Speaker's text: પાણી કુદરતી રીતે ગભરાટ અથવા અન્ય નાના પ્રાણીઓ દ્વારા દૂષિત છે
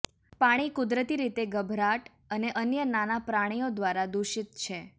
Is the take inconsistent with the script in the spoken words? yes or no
yes